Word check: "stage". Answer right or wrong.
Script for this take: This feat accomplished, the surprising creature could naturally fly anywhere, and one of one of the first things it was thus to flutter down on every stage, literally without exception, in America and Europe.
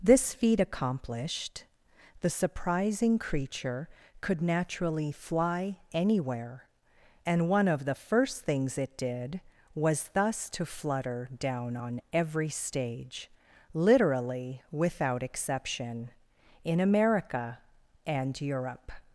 right